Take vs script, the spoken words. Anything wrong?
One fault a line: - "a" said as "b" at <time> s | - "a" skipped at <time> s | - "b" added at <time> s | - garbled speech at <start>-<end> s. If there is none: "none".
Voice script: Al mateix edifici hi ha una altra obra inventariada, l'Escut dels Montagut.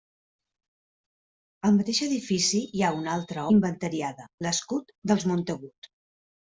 - "obra" skipped at 3.5 s